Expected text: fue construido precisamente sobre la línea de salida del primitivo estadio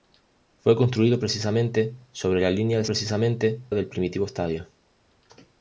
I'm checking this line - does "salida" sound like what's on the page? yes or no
no